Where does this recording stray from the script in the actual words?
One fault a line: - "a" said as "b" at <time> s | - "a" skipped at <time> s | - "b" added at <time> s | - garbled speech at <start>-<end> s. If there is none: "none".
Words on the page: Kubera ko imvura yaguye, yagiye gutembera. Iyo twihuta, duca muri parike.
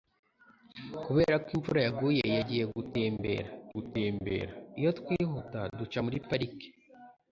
- "gutembera" added at 3.7 s